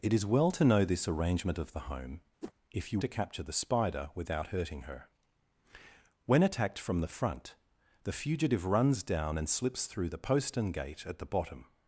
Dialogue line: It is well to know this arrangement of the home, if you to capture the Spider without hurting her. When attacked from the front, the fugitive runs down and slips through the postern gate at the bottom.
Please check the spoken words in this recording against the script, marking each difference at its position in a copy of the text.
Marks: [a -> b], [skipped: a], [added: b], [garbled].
It is well to know this arrangement of the home, if you to capture the Spider without hurting her. When attacked from the front, the fugitive runs down and slips through the postern gate at the bottom.